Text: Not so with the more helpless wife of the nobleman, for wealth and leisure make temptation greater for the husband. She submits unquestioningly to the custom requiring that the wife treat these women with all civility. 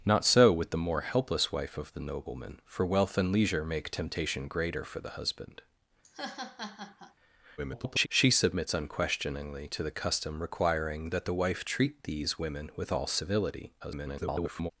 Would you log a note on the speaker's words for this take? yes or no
yes